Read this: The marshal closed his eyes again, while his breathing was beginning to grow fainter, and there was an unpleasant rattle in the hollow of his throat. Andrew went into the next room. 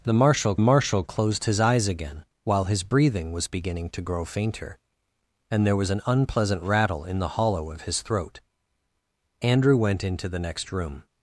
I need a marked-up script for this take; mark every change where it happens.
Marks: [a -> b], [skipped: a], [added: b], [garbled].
The marshal [added: marshal] closed his eyes again, while his breathing was beginning to grow fainter, and there was an unpleasant rattle in the hollow of his throat. Andrew went into the next room.